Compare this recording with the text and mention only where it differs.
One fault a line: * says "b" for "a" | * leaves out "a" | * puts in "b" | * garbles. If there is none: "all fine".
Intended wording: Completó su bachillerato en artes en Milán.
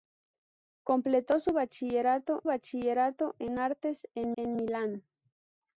* puts in "bachillerato"
* puts in "en"